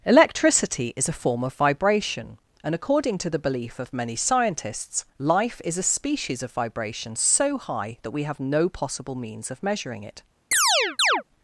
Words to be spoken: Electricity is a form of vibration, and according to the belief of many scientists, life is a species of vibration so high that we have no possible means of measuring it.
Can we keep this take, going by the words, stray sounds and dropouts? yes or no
no